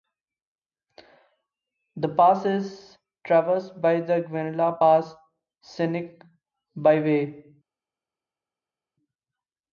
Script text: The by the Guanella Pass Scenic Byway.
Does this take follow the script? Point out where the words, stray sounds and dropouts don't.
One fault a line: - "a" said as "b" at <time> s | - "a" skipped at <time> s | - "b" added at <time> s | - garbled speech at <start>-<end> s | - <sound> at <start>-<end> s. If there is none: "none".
- "pass is traversed" added at 2.1 s